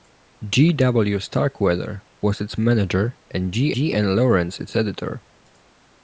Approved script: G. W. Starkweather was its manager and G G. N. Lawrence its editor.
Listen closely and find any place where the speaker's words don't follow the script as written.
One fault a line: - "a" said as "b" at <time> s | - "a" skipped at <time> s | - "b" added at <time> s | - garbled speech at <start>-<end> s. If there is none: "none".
none